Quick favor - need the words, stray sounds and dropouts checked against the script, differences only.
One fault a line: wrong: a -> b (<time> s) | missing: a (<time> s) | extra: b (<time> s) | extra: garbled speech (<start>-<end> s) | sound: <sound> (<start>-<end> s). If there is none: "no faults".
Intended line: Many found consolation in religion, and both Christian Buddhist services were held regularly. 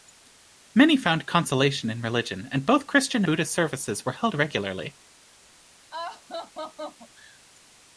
sound: laugh (5.9-7.4 s)